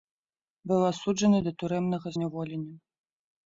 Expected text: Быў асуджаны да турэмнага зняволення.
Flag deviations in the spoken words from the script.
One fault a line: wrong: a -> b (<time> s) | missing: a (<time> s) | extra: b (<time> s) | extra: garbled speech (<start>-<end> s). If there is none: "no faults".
no faults